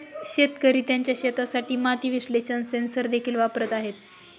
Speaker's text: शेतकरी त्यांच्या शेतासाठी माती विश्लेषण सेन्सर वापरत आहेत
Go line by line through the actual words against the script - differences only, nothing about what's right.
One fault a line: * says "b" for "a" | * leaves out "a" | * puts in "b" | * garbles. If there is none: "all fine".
* puts in "देखील"